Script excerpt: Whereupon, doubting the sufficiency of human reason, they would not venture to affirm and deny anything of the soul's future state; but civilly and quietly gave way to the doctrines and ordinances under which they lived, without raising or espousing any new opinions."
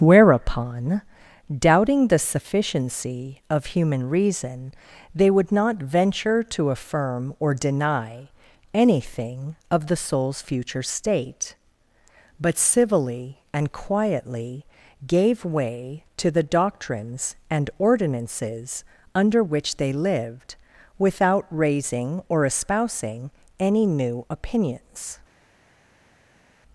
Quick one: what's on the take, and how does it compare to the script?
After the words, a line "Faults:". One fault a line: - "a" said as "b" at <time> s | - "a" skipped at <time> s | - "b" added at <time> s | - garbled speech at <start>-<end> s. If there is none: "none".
Whereupon, doubting the sufficiency of human reason, they would not venture to affirm or deny anything of the soul's future state; but civilly and quietly gave way to the doctrines and ordinances under which they lived, without raising or espousing any new opinions."
Faults:
- "and" said as "or" at 7.4 s